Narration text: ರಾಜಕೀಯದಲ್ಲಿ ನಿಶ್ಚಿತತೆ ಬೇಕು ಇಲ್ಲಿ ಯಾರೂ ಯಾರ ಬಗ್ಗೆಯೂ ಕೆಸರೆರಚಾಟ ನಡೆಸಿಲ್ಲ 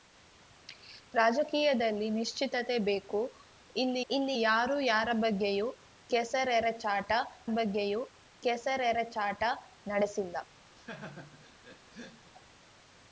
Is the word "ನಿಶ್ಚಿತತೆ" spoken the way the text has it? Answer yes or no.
yes